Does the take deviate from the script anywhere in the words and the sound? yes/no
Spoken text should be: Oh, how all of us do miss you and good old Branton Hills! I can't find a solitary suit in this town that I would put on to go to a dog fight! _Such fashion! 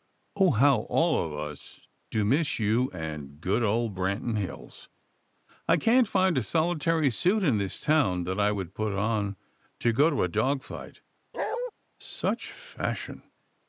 yes